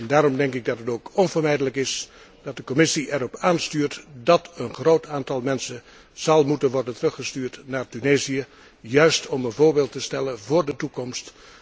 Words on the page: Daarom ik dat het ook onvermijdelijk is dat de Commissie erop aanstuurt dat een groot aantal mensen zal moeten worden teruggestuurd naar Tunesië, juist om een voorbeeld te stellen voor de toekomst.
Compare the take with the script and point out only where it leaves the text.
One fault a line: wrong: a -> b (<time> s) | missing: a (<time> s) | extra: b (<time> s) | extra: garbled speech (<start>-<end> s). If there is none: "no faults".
extra: denk (0.4 s)